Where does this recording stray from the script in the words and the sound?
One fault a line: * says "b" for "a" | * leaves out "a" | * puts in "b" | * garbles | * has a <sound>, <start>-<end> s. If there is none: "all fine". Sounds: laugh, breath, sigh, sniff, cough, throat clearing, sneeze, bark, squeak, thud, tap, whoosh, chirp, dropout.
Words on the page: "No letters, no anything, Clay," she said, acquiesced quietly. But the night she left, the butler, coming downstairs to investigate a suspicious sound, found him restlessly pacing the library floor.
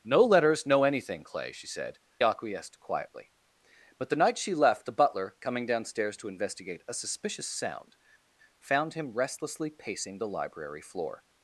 all fine